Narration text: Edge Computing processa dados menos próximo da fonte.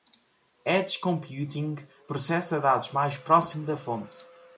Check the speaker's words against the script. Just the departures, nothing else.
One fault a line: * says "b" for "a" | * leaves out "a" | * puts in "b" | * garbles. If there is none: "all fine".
* says "mais" for "menos"